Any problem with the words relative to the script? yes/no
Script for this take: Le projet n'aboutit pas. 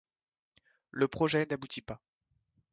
no